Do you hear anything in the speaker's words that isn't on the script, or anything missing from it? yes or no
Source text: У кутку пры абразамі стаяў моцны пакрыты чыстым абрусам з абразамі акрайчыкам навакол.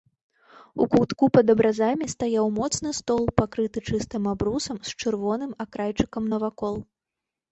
yes